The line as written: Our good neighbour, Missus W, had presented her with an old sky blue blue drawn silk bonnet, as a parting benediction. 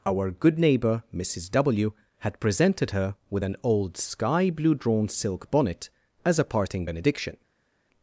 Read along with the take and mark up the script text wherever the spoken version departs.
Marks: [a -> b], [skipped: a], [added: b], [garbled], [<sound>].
Our good neighbour, Missus W, had presented her with an old sky blue [skipped: blue] drawn silk bonnet, as a parting benediction.